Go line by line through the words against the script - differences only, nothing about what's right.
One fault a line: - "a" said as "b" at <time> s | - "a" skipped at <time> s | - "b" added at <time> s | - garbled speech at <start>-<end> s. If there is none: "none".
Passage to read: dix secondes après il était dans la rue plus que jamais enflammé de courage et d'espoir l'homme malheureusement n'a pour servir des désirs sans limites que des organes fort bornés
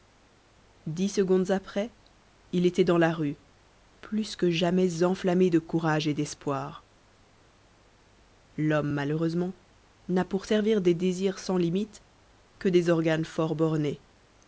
none